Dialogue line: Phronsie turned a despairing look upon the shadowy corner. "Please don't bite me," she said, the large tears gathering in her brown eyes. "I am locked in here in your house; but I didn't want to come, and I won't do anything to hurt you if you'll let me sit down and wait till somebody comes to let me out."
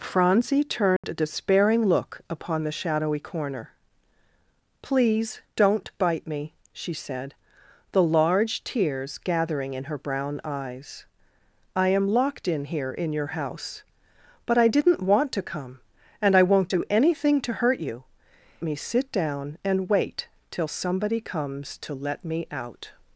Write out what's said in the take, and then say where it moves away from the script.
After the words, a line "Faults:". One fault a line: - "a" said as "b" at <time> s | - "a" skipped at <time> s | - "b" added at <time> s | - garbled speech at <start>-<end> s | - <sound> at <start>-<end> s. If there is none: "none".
Phronsie turned a despairing look upon the shadowy corner. "Please don't bite me," she said, the large tears gathering in her brown eyes. "I am locked in here in your house; but I didn't want to come, and I won't do anything to hurt you me sit down and wait till somebody comes to let me out."
Faults:
- dropout at 1.0-1.0 s
- "if you'll let" skipped at 18.0 s